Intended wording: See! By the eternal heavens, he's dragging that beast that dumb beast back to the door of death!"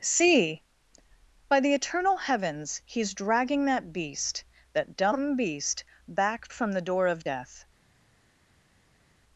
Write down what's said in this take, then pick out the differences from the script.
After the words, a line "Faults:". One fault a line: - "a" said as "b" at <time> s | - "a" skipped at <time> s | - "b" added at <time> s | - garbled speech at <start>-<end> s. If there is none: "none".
See! By the eternal heavens, he's dragging that beast that dumb beast back from the door of death!"
Faults:
- "to" said as "from" at 6.5 s